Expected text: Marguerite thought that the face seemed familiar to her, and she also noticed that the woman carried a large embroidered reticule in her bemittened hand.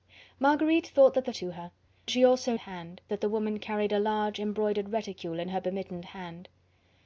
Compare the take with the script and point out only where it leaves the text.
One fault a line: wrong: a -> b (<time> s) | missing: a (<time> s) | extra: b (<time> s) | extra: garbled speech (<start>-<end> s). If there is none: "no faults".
missing: face seemed familiar (1.3 s)
missing: and (1.7 s)
wrong: noticed -> hand (2.6 s)